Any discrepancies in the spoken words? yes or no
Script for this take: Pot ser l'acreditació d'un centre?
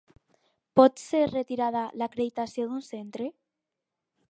yes